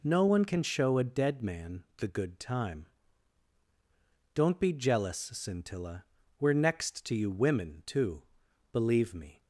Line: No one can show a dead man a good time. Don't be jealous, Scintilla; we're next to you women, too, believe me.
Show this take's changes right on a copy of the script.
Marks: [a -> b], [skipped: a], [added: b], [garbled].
No one can show a dead man [a -> the] good time. Don't be jealous, Scintilla; we're next to you women, too, believe me.